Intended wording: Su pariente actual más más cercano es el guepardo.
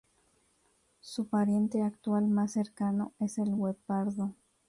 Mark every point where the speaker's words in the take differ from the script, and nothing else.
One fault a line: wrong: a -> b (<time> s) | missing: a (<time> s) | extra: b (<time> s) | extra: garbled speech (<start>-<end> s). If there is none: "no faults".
missing: más (2.5 s)